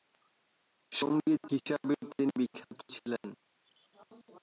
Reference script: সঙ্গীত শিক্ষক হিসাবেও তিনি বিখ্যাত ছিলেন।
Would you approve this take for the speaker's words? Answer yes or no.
no